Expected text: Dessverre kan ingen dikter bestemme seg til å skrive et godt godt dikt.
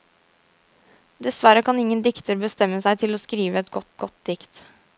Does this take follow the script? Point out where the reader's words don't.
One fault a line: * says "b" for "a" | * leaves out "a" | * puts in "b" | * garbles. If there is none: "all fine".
all fine